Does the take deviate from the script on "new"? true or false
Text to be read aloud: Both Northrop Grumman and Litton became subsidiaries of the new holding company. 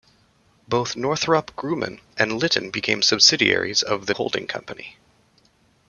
true